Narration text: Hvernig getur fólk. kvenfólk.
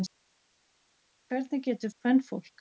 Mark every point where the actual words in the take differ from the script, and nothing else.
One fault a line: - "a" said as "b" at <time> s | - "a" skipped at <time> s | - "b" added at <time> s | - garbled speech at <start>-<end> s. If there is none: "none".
- "fólk" skipped at 1.9 s